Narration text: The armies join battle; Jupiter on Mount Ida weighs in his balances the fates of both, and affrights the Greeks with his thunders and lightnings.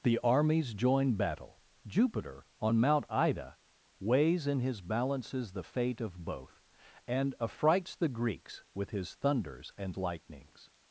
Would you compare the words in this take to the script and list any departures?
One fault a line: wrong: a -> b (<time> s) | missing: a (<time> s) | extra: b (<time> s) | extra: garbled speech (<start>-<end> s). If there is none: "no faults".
wrong: fates -> fate (5.6 s)